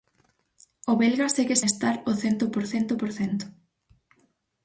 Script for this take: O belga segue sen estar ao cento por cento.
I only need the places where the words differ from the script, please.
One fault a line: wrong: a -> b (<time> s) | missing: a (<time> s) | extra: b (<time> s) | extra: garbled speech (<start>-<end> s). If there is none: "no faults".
missing: sen (1.6 s)
extra: por cento (3.0 s)